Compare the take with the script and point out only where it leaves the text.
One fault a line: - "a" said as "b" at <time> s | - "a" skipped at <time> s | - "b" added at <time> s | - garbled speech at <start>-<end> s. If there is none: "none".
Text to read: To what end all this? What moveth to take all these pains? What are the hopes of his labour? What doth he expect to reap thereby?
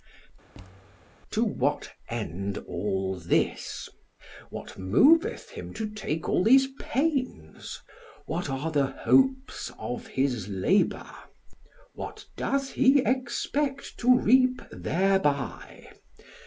- "him" added at 5.5 s